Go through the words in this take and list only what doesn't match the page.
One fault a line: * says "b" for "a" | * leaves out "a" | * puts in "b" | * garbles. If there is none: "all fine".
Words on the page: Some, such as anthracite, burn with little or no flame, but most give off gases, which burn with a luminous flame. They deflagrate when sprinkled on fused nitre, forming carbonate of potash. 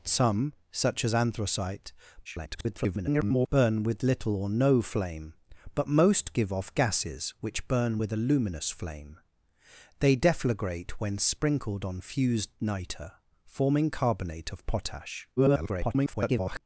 * garbles
* garbles